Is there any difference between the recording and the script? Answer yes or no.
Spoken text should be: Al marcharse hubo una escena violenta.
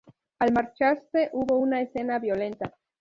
no